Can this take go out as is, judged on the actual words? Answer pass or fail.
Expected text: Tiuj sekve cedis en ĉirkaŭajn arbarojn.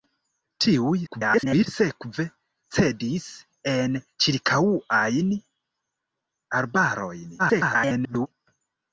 fail